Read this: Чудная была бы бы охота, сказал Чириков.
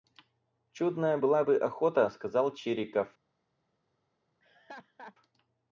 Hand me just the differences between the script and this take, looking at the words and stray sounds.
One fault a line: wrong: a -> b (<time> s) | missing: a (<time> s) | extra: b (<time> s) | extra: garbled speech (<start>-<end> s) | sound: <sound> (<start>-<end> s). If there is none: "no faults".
missing: бы (1.6 s)
sound: laugh (4.4-5.2 s)